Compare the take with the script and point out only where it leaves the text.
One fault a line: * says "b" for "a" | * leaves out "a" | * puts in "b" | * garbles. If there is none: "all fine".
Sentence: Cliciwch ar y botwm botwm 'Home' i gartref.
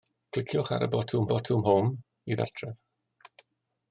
all fine